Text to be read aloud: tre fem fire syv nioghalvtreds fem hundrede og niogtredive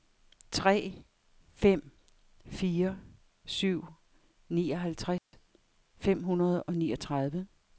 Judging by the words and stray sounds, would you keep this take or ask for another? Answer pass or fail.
fail